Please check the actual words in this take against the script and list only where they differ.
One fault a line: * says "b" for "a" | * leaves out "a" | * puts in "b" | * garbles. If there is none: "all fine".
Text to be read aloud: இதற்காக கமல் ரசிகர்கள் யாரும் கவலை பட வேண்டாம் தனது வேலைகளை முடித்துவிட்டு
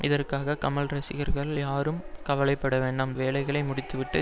* leaves out "தனது"